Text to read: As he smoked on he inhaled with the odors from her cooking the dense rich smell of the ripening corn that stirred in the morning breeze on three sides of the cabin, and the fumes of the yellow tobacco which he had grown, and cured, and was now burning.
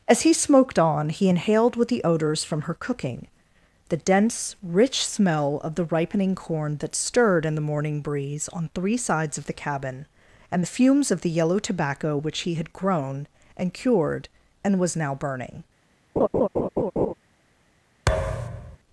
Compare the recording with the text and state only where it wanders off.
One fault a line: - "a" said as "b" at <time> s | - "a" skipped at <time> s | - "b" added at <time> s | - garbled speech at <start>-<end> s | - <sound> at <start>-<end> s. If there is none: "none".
- laugh at 16.2-17.1 s
- thud at 18.1-18.8 s